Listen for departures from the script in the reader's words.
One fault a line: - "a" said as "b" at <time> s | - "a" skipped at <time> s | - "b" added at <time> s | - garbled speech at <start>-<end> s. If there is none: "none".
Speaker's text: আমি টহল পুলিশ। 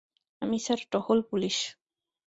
- "স্যার" added at 0.6 s